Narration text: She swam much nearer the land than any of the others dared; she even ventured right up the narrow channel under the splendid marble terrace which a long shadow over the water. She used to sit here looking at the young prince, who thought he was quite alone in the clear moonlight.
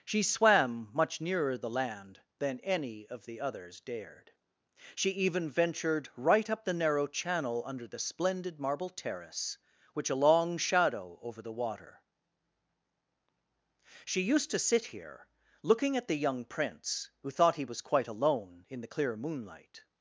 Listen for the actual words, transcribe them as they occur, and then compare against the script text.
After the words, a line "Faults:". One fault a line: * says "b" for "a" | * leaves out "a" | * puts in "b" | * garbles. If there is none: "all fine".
She swam much nearer the land than any of the others dared; she even ventured right up the narrow channel under the splendid marble terrace which a long shadow over the water. She used to sit here looking at the young prince, who thought he was quite alone in the clear moonlight.
Faults:
all fine